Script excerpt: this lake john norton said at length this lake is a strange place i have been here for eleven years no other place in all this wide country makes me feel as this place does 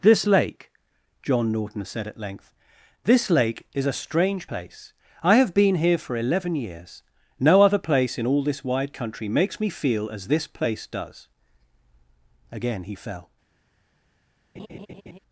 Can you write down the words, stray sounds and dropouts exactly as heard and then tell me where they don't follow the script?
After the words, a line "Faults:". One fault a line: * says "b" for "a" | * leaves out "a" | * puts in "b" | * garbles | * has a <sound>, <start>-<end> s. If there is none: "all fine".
this lake john norton said at length this lake is a strange place i have been here for eleven years no other place in all this wide country makes me feel as this place does again he fell
Faults:
* puts in "again he fell"
* has a laugh, 14.5-15.2 s